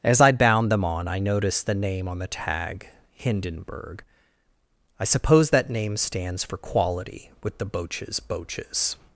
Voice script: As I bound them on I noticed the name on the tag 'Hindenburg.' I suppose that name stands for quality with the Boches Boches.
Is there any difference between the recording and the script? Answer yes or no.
no